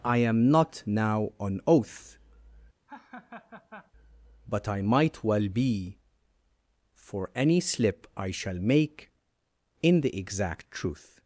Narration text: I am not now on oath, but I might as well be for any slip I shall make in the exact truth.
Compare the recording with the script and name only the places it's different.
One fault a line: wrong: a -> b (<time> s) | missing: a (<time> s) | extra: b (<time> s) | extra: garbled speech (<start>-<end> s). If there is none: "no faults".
missing: as (5.2 s)